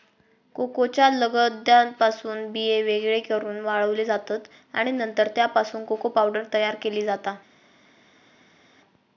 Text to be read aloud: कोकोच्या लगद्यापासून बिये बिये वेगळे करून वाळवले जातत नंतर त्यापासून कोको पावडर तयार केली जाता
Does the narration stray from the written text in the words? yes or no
yes